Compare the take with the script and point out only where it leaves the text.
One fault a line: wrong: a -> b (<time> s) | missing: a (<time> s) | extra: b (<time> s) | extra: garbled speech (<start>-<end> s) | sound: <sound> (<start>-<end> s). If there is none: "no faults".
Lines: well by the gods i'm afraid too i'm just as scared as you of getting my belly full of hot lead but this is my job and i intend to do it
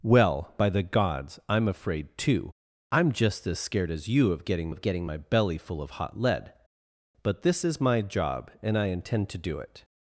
extra: of getting (4.7 s)